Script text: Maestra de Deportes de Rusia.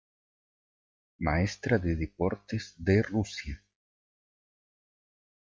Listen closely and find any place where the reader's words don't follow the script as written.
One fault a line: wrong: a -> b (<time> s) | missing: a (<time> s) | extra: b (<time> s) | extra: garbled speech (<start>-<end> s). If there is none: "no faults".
no faults